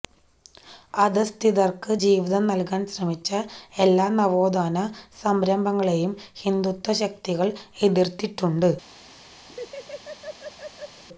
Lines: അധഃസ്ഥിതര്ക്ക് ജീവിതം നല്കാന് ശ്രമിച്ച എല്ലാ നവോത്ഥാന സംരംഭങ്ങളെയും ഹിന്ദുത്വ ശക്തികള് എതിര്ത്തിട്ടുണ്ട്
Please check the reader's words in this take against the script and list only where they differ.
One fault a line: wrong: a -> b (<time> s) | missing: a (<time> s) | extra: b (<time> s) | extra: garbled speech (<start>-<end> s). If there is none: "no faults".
no faults